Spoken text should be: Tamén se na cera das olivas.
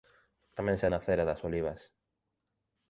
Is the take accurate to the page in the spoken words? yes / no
yes